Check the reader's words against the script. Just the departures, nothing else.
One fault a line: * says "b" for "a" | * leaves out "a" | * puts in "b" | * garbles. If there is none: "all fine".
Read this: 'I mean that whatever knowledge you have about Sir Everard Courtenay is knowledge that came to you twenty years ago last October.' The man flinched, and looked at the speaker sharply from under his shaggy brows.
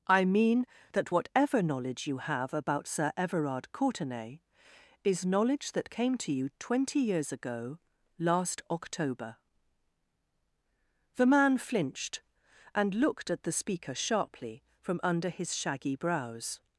all fine